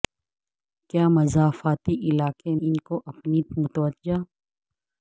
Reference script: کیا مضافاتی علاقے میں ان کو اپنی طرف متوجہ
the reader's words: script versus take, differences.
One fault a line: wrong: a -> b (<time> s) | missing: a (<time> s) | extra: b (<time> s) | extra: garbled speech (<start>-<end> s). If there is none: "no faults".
missing: میں (2.5 s)
missing: طرف (3.4 s)